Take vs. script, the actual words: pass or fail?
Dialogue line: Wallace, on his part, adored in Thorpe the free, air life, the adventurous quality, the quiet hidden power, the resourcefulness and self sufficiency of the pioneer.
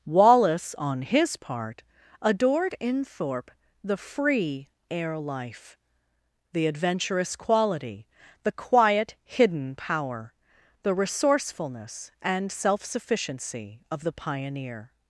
pass